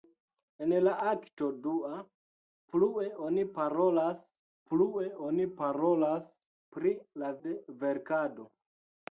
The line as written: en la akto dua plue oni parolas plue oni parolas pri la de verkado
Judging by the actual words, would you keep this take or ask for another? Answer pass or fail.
pass